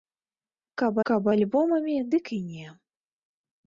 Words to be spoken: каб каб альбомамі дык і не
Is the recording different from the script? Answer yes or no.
no